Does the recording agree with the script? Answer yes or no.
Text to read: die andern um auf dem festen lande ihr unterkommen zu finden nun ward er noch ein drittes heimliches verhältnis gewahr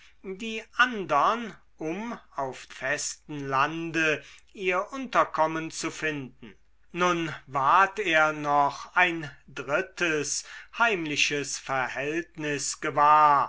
no